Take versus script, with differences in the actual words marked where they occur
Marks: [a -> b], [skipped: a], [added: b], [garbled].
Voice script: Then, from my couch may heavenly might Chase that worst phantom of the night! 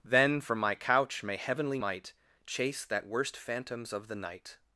Then, from my couch may heavenly might Chase that worst [phantom -> phantoms] of the night!